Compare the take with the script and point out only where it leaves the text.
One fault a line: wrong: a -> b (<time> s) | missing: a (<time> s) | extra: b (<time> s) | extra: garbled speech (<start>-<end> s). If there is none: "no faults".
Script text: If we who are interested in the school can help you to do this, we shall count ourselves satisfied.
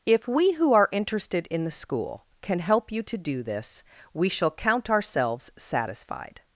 no faults